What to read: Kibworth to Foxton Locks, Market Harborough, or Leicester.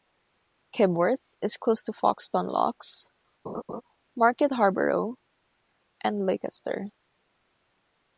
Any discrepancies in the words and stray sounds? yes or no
yes